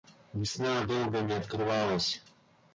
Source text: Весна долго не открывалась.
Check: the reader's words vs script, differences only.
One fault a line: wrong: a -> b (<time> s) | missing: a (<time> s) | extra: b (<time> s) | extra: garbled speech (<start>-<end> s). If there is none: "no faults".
no faults